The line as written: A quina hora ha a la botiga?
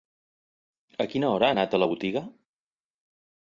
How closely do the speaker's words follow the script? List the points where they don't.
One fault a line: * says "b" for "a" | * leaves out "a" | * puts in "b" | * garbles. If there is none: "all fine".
* puts in "anat"